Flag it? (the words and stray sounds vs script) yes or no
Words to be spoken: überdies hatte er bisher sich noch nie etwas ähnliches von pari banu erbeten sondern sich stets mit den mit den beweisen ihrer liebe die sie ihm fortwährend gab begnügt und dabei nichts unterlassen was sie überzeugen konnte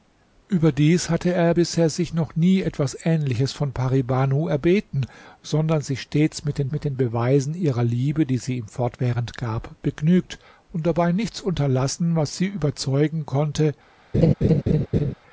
yes